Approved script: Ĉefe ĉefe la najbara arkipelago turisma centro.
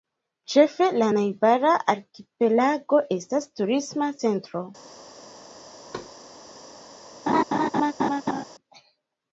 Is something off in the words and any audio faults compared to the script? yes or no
yes